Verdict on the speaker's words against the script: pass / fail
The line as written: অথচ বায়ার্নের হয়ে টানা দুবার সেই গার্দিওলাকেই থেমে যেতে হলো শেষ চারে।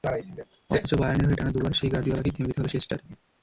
pass